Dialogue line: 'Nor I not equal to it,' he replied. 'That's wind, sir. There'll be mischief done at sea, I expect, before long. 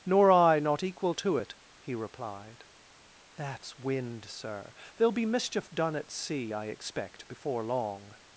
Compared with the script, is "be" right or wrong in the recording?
right